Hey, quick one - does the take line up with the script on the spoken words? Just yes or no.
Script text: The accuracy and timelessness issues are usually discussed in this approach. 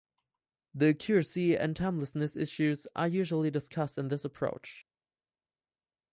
yes